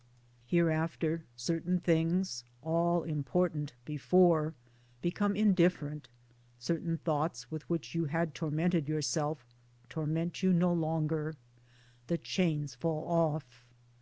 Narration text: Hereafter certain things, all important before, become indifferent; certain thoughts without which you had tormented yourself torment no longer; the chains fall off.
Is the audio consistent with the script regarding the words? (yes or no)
no